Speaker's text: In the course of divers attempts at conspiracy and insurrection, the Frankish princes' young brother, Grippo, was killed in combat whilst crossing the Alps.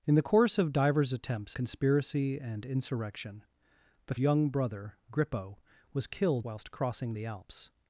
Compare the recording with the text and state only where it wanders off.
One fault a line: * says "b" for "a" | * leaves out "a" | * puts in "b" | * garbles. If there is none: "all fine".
* leaves out "at"
* leaves out "Frankish princes"
* leaves out "in combat"